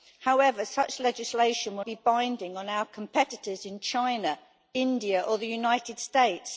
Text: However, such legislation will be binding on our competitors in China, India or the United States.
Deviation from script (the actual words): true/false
false